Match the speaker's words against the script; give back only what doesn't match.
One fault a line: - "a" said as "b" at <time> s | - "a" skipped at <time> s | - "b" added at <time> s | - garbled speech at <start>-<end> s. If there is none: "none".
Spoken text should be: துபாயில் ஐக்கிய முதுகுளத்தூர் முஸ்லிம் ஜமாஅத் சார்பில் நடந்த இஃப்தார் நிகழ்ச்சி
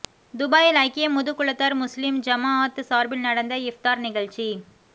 none